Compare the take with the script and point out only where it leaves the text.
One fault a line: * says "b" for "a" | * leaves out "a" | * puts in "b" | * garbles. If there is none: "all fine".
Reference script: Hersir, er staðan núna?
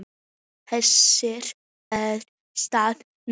all fine